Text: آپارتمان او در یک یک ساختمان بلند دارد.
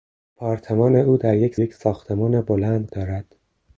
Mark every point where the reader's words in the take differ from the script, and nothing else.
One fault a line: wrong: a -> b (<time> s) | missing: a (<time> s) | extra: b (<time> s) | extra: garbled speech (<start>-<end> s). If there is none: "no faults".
no faults